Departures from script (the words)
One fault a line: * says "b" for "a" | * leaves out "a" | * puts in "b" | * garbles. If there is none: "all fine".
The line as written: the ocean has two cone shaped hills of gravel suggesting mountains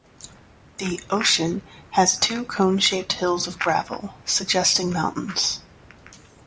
all fine